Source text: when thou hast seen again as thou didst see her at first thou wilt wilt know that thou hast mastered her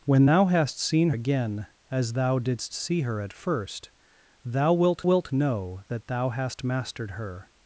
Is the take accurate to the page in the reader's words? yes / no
yes